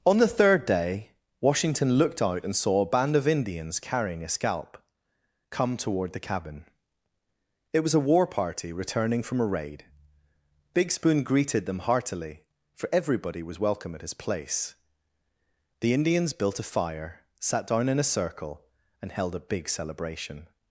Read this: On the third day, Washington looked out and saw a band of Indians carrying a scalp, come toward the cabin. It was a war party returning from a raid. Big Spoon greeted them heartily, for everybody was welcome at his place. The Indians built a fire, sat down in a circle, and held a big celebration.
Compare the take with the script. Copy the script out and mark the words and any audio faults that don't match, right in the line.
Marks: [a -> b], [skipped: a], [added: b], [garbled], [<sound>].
On the third day, Washington looked out and saw a band of Indians carrying a scalp, come toward the cabin. It was a war party returning from a raid. Big Spoon greeted them heartily, for everybody was welcome at his place. The Indians built a fire, sat down in a circle, and held a big celebration.